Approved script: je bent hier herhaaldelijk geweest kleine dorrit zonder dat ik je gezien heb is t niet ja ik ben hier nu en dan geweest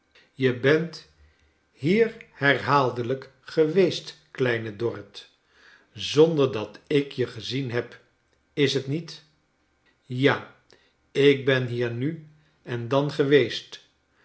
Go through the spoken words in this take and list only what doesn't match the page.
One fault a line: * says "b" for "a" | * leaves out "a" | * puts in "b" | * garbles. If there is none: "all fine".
all fine